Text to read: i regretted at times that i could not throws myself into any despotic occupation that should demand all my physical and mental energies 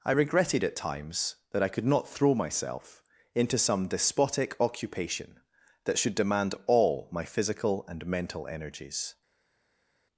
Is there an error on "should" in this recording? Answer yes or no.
no